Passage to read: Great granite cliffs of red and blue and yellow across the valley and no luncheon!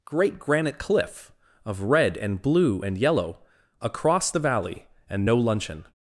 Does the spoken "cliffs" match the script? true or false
false